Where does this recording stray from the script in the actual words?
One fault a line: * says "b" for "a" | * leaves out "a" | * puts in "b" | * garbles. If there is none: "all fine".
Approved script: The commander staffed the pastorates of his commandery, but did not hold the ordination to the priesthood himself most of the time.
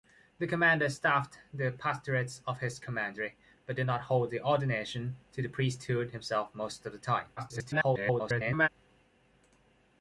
* garbles